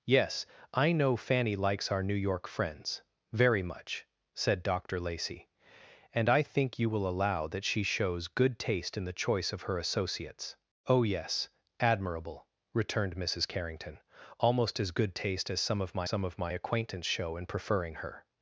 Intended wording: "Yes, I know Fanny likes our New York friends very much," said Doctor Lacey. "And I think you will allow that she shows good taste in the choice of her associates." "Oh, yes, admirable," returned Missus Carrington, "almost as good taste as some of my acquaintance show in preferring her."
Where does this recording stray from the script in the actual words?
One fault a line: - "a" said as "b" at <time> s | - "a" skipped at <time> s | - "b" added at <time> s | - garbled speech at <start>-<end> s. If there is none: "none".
- "some of my" added at 16.0 s